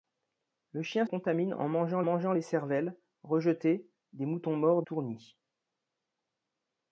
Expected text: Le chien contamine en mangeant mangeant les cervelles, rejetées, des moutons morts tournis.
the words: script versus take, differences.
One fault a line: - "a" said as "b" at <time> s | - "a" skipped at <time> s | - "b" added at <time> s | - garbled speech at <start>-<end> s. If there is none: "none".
none